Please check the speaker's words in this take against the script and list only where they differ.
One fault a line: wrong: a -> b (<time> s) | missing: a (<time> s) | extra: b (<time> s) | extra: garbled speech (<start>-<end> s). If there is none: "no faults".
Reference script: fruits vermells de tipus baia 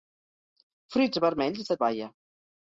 missing: tipus (1.8 s)